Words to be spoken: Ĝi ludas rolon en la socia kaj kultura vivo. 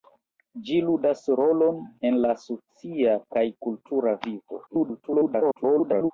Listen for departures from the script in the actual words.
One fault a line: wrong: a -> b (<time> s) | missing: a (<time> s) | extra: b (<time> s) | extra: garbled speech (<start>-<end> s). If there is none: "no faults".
extra: garbled speech (4.7-6.1 s)